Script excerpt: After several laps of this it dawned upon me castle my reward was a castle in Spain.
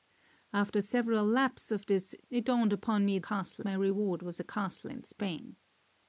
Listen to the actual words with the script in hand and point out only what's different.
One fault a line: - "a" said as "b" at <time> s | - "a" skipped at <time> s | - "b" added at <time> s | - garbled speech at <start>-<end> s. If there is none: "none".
none